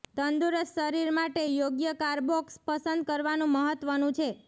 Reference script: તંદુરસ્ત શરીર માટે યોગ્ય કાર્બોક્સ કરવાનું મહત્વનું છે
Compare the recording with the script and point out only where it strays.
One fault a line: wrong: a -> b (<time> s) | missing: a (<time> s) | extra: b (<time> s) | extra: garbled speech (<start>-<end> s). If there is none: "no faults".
extra: પસંદ (2.6 s)